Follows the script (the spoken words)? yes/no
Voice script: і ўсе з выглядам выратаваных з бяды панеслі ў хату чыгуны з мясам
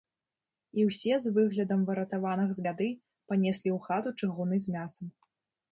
yes